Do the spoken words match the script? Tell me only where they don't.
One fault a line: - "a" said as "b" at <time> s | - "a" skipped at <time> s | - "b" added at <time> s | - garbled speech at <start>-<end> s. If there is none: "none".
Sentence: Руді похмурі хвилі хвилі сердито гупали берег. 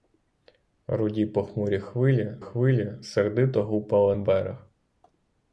none